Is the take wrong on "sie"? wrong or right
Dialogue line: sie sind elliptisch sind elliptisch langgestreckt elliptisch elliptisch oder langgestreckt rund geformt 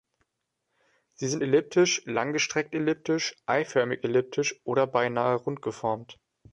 right